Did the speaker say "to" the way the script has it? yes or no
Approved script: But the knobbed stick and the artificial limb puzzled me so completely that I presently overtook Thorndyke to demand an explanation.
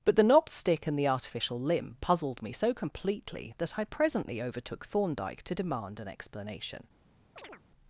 yes